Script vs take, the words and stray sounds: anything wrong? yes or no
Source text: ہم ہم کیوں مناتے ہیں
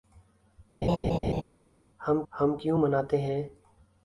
yes